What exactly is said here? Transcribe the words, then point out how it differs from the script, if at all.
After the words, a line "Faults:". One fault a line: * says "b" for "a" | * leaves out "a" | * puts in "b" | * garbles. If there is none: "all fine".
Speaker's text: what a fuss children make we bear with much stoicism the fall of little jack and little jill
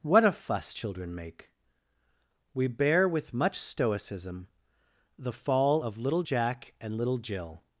what a fuss children make we bear with much stoicism the fall of little jack and little jill
Faults:
all fine